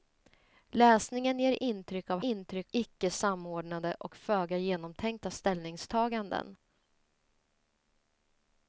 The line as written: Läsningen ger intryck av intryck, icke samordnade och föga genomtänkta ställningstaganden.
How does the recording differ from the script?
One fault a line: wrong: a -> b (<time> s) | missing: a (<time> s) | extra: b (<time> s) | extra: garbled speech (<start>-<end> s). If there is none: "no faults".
no faults